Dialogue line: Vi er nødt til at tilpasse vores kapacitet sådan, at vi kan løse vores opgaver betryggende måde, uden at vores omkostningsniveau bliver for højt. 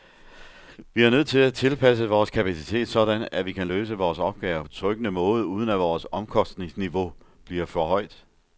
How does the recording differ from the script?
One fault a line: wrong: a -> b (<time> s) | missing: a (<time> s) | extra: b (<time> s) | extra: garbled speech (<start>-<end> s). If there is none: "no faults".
no faults